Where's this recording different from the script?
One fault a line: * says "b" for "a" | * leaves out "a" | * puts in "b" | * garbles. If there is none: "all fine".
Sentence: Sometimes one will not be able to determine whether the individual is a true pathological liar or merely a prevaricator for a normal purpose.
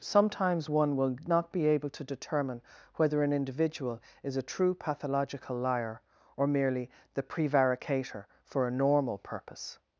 * says "an" for "the"
* says "the" for "a"